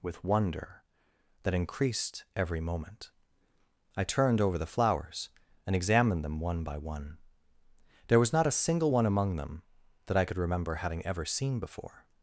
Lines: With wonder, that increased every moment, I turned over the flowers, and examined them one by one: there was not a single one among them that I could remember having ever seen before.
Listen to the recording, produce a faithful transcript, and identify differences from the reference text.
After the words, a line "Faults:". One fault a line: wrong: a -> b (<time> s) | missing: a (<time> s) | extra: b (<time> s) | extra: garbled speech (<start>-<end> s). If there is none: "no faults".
With wonder, that increased every moment, I turned over the flowers, and examined them one by one: there was not a single one among them that I could remember having ever seen before.
Faults:
no faults